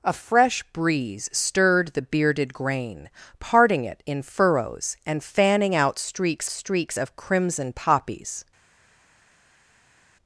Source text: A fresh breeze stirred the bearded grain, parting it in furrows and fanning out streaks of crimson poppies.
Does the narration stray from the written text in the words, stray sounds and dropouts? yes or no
yes